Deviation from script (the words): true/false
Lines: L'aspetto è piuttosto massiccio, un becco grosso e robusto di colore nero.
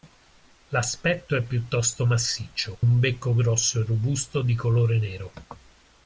false